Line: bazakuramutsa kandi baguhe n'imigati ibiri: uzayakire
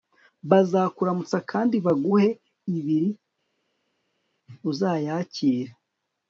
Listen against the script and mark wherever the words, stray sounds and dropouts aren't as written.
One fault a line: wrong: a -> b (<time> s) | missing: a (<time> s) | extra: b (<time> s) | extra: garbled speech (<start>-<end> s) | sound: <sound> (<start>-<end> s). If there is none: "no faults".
missing: n'imigati (2.3 s)